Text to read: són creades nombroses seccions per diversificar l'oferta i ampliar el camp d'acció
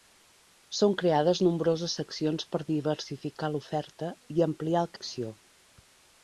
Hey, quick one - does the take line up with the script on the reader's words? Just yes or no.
no